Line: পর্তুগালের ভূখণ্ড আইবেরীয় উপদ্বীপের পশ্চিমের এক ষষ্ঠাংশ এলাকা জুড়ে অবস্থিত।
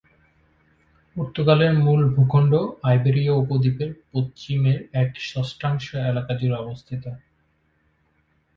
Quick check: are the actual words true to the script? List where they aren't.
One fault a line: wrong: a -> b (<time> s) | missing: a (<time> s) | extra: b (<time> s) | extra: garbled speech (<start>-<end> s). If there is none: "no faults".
extra: মূল (1.8 s)